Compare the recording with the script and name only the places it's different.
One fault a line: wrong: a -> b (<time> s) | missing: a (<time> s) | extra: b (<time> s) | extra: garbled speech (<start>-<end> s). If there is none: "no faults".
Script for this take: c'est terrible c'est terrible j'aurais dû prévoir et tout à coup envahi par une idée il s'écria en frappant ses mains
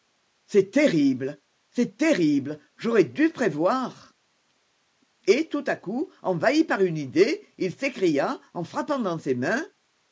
extra: dans (9.0 s)